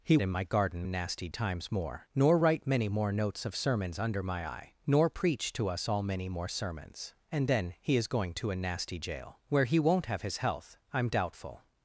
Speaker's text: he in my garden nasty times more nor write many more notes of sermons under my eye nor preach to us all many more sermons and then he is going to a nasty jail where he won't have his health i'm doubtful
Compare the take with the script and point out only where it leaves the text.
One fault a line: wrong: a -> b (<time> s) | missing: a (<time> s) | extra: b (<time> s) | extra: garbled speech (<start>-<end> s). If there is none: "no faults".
no faults